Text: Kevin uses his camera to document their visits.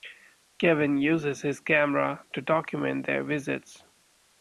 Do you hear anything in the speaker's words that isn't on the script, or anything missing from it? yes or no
no